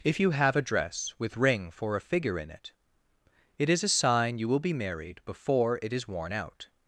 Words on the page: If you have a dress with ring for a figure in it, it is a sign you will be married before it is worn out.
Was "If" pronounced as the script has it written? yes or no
yes